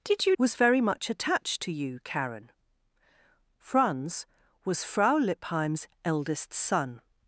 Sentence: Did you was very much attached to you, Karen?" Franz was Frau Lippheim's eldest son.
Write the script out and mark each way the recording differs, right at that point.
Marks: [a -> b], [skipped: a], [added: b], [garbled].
Did you was very much attached to you, Karen?" Franz was Frau Lippheim's eldest son.